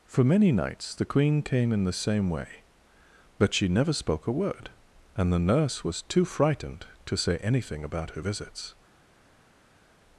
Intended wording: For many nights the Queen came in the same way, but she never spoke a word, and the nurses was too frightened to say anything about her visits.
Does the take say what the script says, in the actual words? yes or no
no